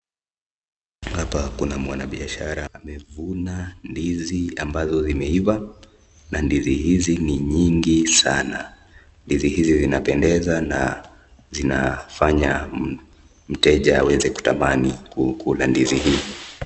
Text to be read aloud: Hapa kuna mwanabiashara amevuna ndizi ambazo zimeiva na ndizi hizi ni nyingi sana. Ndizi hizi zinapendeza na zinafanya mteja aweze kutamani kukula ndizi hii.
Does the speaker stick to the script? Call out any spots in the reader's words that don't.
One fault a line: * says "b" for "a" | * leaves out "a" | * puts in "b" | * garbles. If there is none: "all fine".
all fine